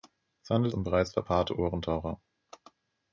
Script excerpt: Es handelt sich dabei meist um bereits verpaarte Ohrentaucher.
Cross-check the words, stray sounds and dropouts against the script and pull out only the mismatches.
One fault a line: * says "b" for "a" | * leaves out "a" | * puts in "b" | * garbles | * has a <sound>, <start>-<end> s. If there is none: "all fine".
* leaves out "sich dabei meist"